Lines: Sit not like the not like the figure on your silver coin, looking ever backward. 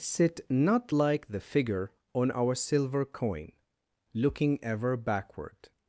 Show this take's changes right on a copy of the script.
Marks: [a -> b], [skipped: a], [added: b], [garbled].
Sit not like the [skipped: not like the] figure on [your -> our] silver coin, looking ever backward.